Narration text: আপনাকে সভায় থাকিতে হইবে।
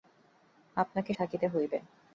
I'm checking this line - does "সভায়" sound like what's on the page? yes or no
no